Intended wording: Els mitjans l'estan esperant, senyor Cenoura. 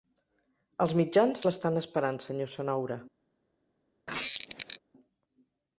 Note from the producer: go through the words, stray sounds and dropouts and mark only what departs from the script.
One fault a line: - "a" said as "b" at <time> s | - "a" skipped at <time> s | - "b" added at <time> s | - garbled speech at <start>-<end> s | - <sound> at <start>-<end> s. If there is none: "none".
- squeak at 4.1-4.8 s